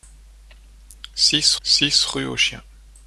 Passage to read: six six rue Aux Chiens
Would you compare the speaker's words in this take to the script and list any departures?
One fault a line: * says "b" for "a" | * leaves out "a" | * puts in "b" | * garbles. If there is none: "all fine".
all fine